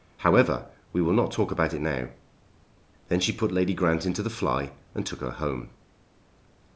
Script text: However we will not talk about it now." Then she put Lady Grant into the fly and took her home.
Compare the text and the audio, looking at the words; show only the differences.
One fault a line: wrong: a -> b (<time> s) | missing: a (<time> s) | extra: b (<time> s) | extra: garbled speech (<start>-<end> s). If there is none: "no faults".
no faults